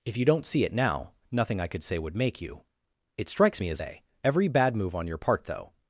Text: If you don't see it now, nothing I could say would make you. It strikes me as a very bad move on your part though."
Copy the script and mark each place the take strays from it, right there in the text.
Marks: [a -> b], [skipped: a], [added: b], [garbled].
If you don't see it now, nothing I could say would make you. It strikes me as a [very -> every] bad move on your part though."